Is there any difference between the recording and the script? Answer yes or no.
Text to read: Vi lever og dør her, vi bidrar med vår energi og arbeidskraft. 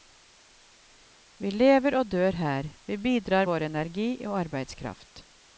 yes